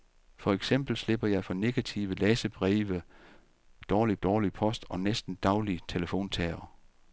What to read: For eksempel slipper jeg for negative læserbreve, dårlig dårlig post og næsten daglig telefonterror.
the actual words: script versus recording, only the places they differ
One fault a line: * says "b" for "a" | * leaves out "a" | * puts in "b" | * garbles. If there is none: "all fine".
all fine